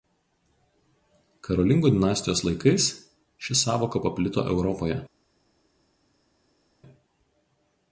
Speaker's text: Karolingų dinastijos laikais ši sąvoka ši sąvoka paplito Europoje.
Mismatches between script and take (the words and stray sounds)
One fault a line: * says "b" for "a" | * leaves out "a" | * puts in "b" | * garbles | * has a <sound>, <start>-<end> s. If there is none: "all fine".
* leaves out "ši sąvoka"